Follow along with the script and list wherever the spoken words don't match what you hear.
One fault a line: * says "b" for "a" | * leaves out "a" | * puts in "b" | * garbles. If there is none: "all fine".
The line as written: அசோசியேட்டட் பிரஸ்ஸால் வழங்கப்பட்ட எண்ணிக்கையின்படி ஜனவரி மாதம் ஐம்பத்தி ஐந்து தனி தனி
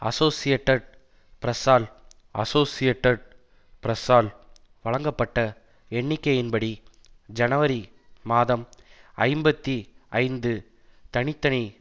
* puts in "அசோசியேட்டட் பிரஸ்ஸால்"